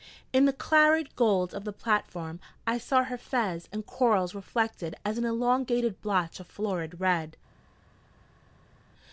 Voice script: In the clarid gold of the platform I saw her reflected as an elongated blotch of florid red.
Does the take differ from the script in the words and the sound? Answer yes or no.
yes